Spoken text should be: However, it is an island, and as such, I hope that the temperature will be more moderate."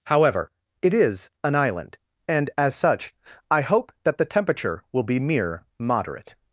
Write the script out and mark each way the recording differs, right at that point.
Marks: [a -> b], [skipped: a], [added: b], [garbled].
However, it is an island, and as such, I hope that the temperature will be [more -> mere] moderate."